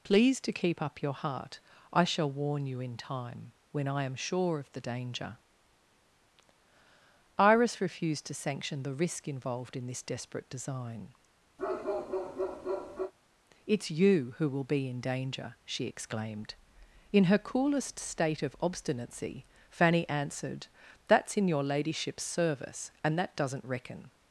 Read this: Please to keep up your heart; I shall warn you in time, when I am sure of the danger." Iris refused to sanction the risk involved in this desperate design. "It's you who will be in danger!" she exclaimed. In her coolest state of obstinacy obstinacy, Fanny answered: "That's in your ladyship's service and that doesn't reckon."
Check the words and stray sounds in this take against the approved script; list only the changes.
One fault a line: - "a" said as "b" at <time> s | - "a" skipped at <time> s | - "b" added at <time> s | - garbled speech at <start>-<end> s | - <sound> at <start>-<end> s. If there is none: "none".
- bark at 11.6-13.1 s
- "obstinacy" skipped at 19.5 s